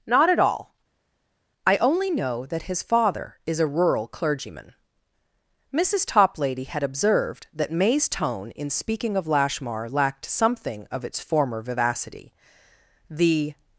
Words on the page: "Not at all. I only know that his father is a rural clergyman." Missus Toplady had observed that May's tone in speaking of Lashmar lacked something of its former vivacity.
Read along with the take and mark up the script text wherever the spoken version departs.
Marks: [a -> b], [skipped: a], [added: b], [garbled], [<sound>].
"Not at all. I only know that his father is a rural clergyman." Missus Toplady had observed that May's tone in speaking of Lashmar lacked something of its former vivacity. [added: The]